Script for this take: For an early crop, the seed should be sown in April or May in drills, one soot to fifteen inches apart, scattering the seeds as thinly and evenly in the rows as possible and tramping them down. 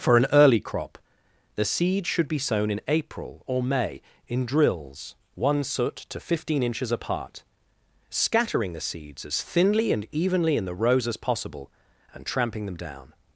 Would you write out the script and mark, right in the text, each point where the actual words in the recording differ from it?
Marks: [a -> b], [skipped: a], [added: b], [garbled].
For an early crop, the seed should be sown in April or May in drills, one soot to fifteen inches apart, scattering the seeds as thinly and evenly in the rows as possible and tramping them down.